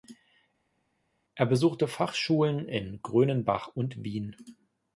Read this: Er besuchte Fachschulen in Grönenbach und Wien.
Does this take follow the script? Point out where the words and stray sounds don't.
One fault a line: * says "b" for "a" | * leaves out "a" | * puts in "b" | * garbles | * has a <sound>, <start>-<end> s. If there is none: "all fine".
all fine